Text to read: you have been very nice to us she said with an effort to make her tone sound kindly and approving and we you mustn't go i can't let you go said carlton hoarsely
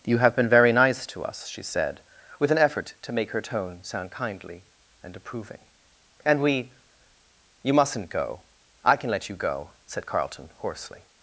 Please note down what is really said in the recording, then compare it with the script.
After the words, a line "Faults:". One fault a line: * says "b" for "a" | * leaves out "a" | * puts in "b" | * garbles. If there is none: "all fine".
you have been very nice to us she said with an effort to make her tone sound kindly and approving and we you mustn't go i can let you go said carlton hoarsely
Faults:
* says "can" for "can't"